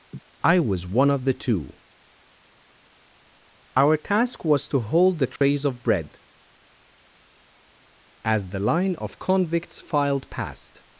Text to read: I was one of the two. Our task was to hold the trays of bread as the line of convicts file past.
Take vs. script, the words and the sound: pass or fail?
fail